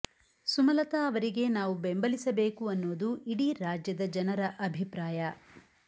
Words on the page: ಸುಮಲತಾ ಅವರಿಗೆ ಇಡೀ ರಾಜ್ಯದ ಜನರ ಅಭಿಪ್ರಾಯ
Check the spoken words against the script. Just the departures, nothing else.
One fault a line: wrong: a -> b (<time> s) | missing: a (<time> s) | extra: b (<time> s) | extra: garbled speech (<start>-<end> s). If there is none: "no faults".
extra: ನಾವು ಬೆಂಬಲಿಸಬೇಕು ಅನ್ನೋದು (1.5 s)